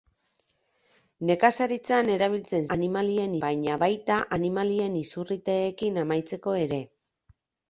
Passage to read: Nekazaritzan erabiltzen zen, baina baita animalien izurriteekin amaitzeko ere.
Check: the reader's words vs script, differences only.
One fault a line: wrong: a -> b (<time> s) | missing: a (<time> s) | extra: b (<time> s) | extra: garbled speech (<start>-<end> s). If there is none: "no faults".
wrong: zen -> animalien (2.8 s)